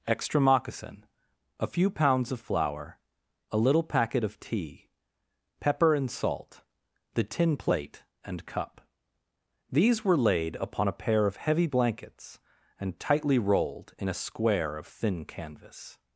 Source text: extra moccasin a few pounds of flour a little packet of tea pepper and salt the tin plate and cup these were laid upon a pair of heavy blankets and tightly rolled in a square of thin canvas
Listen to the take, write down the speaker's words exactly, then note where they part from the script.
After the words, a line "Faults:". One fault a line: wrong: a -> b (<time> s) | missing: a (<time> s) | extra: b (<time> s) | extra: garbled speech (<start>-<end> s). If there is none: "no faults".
extra moccasin a few pounds of flour a little packet of tea pepper and salt the tin plate and cup these were laid upon a pair of heavy blankets and tightly rolled in a square of thin canvas
Faults:
no faults